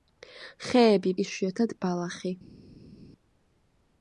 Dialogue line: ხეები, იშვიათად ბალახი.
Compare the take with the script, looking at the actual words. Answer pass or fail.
pass